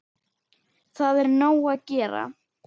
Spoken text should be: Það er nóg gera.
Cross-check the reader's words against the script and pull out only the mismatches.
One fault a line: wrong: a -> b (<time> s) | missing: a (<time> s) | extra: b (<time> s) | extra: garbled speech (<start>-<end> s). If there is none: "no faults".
extra: að (1.7 s)